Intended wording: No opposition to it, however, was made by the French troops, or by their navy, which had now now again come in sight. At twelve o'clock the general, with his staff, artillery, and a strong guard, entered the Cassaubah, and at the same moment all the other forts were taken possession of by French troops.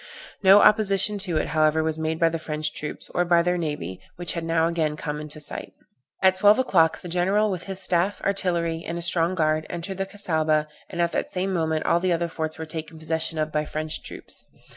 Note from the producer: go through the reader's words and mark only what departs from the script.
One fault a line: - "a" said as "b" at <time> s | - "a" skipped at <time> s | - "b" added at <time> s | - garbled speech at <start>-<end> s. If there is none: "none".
- "now" skipped at 4.7 s